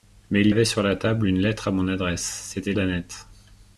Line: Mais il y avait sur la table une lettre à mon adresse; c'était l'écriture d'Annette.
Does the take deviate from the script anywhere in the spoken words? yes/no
yes